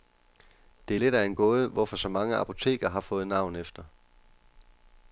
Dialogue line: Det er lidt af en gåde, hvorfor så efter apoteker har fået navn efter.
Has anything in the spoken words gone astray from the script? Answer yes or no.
yes